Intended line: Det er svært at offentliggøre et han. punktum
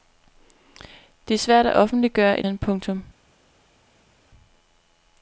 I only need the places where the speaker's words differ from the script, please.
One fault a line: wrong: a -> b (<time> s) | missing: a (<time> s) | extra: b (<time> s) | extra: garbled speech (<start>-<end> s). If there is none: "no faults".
no faults